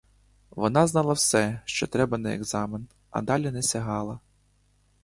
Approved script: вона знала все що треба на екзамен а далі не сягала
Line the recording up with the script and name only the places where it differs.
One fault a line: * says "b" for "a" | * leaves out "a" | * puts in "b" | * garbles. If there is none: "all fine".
all fine